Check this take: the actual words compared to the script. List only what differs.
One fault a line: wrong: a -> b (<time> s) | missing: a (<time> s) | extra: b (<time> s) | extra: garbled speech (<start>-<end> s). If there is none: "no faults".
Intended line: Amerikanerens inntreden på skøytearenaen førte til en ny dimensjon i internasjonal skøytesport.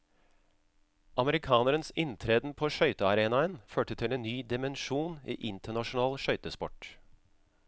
no faults